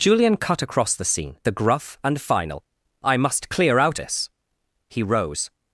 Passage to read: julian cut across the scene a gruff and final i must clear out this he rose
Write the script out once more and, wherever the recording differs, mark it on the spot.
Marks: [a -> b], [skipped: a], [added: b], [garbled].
julian cut across the scene a gruff and final i must clear out this he rose